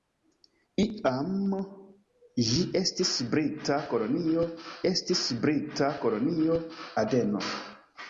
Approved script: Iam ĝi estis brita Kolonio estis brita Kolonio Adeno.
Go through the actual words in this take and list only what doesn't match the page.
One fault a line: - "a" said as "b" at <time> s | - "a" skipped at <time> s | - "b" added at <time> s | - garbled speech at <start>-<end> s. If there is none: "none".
none